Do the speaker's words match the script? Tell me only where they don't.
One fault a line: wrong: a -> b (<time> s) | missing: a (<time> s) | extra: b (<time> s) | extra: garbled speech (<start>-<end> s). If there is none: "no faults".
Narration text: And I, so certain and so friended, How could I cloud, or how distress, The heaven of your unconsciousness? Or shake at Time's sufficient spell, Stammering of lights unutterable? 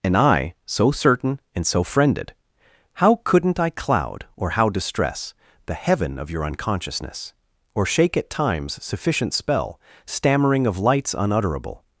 wrong: could -> couldn't (3.2 s)